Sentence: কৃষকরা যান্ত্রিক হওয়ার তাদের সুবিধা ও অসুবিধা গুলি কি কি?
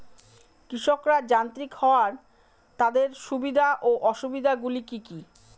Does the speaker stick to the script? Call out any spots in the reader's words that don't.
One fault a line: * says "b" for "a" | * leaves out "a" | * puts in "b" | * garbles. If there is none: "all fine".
all fine